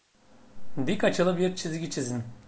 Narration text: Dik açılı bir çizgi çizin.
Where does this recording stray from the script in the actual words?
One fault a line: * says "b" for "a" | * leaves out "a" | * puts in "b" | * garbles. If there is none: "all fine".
all fine